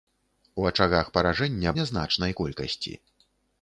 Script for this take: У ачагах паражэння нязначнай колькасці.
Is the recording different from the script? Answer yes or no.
no